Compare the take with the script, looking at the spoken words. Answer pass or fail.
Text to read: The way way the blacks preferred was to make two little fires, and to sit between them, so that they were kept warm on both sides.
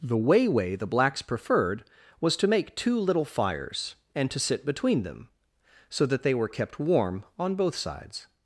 pass